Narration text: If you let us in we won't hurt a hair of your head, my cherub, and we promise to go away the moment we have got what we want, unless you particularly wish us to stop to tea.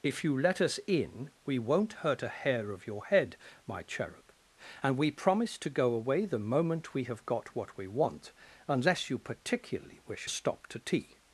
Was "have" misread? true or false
false